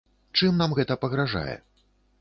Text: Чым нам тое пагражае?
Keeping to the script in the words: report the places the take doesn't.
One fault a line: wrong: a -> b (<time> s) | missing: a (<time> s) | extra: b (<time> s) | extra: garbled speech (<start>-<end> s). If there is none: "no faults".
wrong: тое -> гэта (0.8 s)